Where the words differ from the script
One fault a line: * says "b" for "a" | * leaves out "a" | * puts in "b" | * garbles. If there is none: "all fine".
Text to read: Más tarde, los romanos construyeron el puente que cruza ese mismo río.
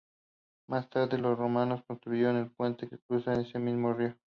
all fine